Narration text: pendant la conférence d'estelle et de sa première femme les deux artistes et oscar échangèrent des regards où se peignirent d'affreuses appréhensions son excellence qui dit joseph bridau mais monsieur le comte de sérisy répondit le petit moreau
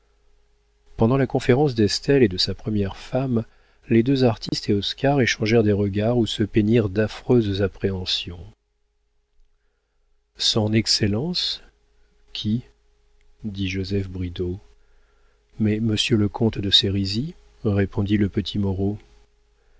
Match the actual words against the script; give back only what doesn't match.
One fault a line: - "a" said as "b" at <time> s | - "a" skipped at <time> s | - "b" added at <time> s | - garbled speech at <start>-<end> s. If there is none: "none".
none